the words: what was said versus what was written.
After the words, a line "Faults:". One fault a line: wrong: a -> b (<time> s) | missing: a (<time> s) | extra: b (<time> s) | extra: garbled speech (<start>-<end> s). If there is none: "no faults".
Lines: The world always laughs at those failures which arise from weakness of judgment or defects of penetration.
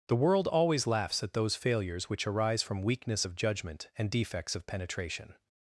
The world always laughs at those failures which arise from weakness of judgment and defects of penetration.
Faults:
wrong: or -> and (4.0 s)